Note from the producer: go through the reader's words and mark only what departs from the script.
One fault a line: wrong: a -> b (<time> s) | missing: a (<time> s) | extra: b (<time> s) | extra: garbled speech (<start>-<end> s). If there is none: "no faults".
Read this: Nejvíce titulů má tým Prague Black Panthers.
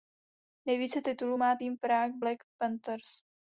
no faults